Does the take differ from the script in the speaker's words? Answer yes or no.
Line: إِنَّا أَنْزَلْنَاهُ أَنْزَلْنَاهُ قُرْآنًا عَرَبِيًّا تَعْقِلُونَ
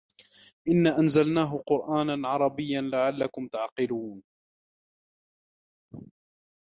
yes